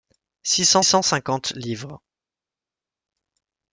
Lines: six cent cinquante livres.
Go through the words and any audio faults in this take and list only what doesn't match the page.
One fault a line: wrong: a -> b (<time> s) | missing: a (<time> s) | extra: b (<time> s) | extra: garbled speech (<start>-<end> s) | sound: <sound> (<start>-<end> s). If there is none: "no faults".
extra: cent (0.8 s)